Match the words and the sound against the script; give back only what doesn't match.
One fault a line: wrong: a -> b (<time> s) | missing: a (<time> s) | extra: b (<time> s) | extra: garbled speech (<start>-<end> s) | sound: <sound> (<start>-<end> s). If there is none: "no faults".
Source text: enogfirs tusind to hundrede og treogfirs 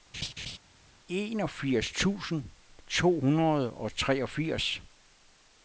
sound: laugh (0.1-0.6 s)